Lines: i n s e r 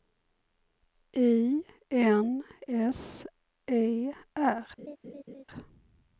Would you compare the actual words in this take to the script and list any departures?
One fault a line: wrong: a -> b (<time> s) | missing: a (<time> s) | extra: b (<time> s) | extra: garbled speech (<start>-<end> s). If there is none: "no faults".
no faults